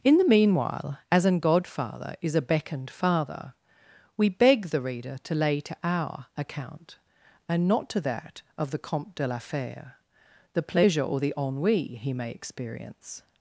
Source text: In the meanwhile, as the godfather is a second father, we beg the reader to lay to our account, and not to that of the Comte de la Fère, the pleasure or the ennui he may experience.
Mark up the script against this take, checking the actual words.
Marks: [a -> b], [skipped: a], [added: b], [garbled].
In the meanwhile, as [the -> an] godfather is a [second -> beckoned] father, we beg the reader to lay to our account, and not to that of the Comte de la Fère, the pleasure or the ennui he may experience.